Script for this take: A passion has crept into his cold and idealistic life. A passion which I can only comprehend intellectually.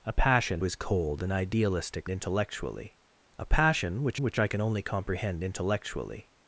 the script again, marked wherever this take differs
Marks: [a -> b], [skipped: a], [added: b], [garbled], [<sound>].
A passion [skipped: has crept into] his cold and idealistic [life. -> intellectually] A passion which [added: which] I can only comprehend intellectually.